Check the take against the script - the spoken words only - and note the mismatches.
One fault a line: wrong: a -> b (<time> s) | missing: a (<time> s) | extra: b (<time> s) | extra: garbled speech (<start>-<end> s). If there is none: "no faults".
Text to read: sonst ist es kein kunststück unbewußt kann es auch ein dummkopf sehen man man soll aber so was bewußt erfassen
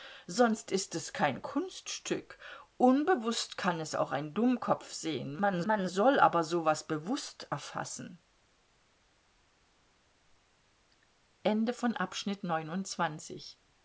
no faults